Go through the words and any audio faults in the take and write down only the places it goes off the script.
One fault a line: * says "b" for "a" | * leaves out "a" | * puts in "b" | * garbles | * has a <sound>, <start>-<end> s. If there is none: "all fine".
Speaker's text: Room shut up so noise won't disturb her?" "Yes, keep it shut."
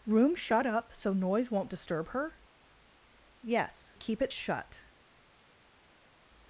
all fine